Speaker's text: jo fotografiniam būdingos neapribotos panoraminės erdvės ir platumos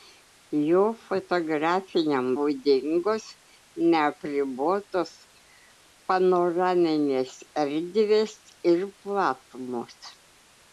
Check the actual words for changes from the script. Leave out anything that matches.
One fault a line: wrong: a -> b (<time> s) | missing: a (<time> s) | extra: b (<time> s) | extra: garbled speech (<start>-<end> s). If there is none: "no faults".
no faults